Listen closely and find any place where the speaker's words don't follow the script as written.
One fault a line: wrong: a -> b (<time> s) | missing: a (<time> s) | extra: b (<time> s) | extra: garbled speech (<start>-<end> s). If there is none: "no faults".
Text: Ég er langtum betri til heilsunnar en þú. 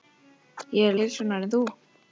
missing: langtum betri til (1.0 s)